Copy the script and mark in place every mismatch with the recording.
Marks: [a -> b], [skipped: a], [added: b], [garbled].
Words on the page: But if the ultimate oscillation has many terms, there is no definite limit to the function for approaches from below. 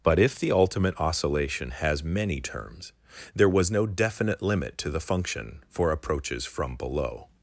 But if the ultimate oscillation has many terms, there [is -> was] no definite limit to the function for approaches from below.